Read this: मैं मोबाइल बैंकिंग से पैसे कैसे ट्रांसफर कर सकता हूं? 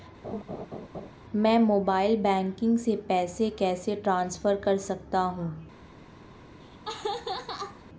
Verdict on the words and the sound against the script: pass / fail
fail